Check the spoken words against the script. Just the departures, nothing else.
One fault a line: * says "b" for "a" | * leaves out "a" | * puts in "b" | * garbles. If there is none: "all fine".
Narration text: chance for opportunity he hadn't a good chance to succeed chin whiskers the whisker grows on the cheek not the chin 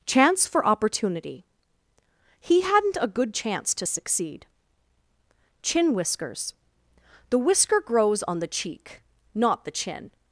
all fine